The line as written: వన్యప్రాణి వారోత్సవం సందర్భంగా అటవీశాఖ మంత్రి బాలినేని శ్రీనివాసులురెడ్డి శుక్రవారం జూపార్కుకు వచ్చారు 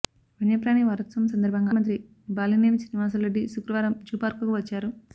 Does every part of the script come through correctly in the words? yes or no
no